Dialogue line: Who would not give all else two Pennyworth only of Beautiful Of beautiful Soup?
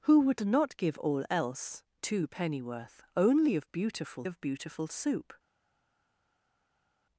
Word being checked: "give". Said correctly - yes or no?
yes